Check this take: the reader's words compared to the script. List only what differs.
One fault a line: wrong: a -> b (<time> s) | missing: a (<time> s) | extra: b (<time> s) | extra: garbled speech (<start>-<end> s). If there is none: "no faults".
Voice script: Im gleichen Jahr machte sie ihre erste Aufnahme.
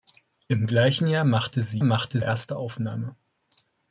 wrong: ihre -> machte (1.8 s)